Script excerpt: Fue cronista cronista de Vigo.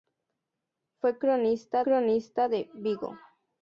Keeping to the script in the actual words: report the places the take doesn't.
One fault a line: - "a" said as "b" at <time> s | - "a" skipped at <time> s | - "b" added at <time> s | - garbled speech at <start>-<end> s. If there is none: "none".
none